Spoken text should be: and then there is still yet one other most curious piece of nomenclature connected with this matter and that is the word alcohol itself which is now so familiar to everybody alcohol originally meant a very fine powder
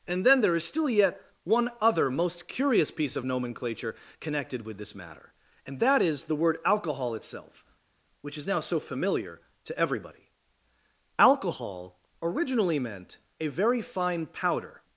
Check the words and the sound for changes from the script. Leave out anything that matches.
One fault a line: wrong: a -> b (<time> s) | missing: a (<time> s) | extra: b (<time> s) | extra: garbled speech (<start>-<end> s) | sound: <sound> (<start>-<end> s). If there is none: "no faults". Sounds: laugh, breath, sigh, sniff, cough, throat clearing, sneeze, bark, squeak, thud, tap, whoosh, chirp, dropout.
no faults